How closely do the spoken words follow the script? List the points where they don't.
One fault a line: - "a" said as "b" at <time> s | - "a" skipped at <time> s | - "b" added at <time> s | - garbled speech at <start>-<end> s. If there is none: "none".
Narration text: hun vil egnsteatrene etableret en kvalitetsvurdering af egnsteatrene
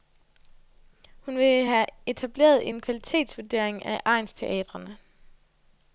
- "egnsteatrene" said as "have" at 1.6 s